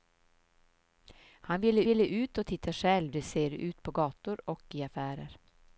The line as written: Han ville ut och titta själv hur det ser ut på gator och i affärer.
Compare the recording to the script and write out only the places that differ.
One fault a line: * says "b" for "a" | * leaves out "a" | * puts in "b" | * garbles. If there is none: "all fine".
* puts in "ville"
* leaves out "hur"